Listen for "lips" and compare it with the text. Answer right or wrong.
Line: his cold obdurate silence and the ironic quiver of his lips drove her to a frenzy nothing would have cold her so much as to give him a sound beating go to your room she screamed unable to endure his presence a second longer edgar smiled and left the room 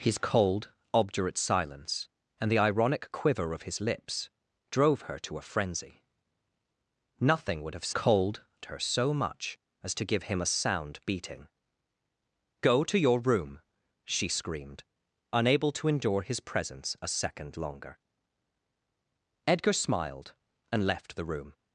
right